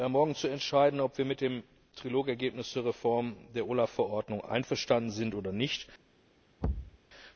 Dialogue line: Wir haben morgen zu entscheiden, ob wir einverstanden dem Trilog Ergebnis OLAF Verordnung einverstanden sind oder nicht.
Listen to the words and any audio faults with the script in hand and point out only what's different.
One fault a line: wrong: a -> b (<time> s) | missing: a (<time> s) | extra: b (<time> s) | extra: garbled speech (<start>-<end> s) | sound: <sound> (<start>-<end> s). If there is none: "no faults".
wrong: einverstanden -> mit (1.2 s)
extra: zur Reform der (2.7 s)
sound: thud (6.6-7.0 s)